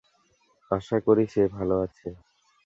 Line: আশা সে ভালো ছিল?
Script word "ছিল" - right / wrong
wrong